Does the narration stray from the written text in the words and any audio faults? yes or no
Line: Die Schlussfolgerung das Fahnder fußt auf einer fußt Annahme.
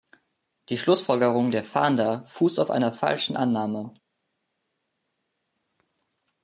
yes